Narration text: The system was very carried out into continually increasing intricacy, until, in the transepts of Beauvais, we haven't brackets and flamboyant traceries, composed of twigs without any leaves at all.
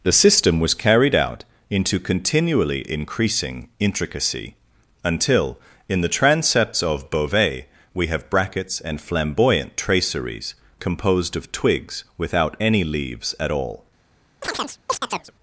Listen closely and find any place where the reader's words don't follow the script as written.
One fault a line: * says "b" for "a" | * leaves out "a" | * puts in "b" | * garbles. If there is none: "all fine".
* leaves out "very"
* says "have" for "haven't"